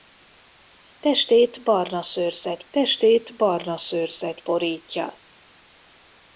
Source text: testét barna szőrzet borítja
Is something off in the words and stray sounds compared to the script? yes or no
yes